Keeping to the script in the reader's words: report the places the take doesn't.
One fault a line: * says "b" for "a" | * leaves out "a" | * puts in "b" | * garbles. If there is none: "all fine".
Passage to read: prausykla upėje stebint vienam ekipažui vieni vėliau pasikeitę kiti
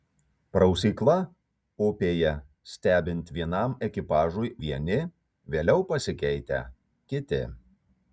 all fine